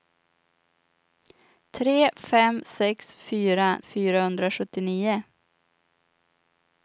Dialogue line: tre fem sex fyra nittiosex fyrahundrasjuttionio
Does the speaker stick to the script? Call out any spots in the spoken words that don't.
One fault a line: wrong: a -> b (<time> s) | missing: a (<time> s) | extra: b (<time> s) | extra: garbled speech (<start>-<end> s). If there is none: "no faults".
missing: nittiosex (3.8 s)